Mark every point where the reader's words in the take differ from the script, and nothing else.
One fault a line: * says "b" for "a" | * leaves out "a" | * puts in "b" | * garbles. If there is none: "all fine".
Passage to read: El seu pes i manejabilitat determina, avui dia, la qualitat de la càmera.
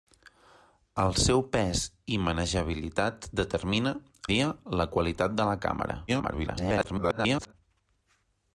* leaves out "avui"
* garbles